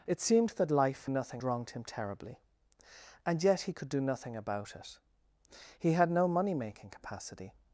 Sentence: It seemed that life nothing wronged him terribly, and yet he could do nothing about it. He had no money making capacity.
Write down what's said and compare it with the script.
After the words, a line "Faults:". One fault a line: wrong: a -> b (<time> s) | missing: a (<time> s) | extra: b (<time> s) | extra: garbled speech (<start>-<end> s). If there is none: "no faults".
It seemed that life nothing wronged him terribly, and yet he could do nothing about it. He had no money making capacity.
Faults:
no faults